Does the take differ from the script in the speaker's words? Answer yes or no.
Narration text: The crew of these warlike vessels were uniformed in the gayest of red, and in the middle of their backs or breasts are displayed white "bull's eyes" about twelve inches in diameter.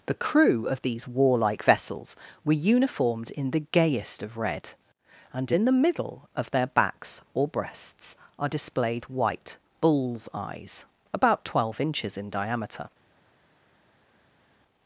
no